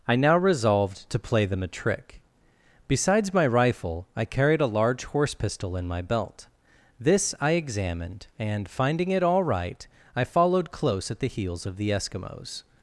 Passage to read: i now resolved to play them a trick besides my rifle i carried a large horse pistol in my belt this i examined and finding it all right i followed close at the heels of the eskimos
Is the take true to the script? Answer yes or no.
yes